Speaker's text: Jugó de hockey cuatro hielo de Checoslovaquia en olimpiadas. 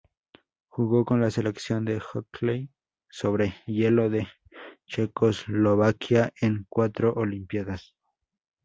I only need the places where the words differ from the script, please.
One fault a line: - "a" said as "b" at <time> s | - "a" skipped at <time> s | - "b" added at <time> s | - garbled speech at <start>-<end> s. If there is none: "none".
- "con la selección" added at 1.0 s
- "cuatro" said as "sobre" at 3.1 s
- "cuatro" added at 6.7 s